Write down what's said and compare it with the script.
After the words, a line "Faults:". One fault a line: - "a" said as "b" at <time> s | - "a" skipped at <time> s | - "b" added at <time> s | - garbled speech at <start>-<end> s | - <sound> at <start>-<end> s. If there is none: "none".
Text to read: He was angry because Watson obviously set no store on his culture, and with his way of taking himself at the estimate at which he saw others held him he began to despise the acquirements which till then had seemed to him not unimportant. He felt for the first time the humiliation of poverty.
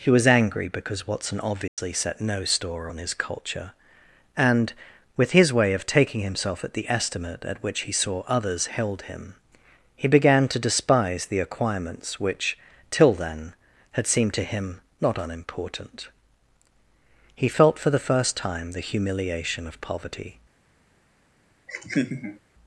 He was angry because Watson obviously set no store on his culture, and with his way of taking himself at the estimate at which he saw others held him he began to despise the acquirements which till then had seemed to him not unimportant. He felt for the first time the humiliation of poverty.
Faults:
- dropout at 1.7-1.8 s
- laugh at 21.7-22.4 s